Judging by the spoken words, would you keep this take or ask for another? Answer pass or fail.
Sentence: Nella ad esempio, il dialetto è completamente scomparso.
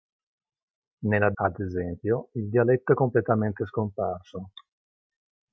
pass